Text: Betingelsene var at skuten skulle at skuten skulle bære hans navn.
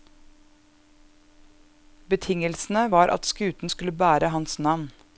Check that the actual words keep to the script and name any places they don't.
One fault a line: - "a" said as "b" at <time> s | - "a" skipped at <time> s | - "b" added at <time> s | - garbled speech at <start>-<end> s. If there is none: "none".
- "at skuten skulle" skipped at 3.9 s